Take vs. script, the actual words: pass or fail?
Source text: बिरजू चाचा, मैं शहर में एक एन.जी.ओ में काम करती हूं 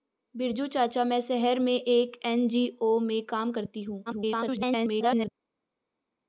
fail